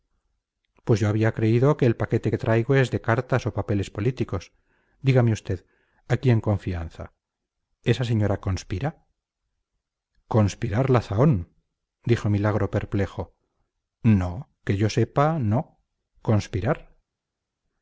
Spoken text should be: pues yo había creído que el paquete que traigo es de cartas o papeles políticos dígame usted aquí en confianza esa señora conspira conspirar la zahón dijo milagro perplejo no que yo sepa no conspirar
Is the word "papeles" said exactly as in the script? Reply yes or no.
yes